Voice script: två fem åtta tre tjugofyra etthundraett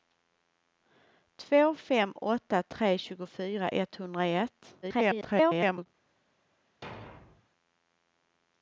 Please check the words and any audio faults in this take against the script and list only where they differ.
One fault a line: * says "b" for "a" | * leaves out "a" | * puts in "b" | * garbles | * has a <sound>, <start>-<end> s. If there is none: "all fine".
* garbles
* has a thud, 6.8-7.5 s